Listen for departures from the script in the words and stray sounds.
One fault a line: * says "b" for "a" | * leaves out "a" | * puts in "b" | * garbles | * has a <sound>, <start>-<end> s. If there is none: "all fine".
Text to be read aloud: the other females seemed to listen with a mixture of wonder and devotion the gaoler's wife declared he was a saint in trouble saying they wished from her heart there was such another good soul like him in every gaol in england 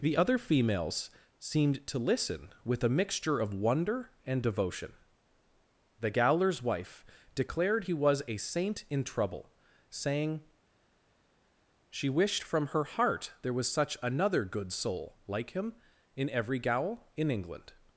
* says "she" for "they"